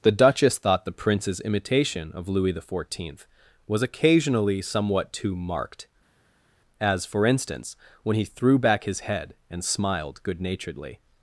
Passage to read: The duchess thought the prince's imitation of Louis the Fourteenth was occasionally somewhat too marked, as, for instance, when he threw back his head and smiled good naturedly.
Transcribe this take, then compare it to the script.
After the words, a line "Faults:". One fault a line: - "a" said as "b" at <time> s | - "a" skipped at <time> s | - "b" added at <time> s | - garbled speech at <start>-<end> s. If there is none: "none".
The duchess thought the prince's imitation of Louis the Fourteenth was occasionally somewhat too marked, as, for instance, when he threw back his head and smiled good naturedly.
Faults:
none